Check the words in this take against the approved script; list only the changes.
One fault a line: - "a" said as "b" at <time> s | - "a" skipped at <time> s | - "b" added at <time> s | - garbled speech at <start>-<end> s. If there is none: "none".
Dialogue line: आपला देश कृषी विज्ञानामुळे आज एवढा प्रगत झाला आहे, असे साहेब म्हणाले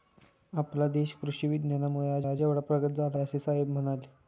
- "आज" added at 2.3 s
- "आहे" skipped at 3.2 s